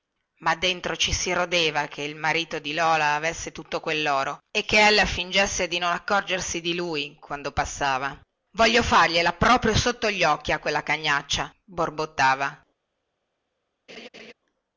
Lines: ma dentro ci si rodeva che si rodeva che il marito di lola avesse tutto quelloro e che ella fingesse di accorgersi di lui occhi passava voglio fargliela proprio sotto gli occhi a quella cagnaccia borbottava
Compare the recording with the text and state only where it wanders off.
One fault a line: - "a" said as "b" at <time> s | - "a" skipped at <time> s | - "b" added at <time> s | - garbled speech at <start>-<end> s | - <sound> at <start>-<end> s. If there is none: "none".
- "si rodeva che" skipped at 2.0 s
- "non" added at 5.8 s
- "occhi" said as "quando" at 7.2 s
- laugh at 13.9-14.3 s